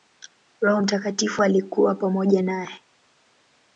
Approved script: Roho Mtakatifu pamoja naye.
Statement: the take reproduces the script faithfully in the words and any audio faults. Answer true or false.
false